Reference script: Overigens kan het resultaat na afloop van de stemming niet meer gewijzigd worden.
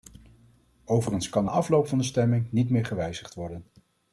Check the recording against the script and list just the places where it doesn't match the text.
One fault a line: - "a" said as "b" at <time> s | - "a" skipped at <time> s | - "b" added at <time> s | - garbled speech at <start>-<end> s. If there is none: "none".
- "het resultaat na" skipped at 1.4 s